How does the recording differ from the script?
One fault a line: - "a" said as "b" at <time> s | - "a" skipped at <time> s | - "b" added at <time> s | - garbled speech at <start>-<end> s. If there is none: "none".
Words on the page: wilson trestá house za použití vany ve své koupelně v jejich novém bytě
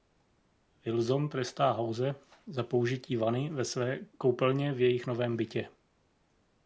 none